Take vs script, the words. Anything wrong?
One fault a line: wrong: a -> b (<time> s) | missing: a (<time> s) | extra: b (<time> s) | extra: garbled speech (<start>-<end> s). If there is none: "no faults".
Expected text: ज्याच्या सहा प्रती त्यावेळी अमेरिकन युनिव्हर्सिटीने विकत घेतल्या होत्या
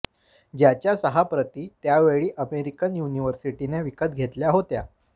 no faults